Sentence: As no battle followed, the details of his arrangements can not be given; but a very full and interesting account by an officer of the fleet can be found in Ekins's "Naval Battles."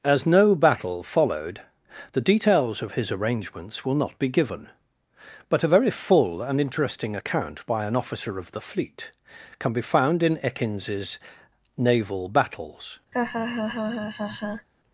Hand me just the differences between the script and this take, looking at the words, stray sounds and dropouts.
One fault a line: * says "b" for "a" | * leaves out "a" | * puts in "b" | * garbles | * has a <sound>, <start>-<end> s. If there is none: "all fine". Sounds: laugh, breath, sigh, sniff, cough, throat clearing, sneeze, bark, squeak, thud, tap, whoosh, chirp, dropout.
* says "will" for "can"
* has a laugh, 13.1-14.7 s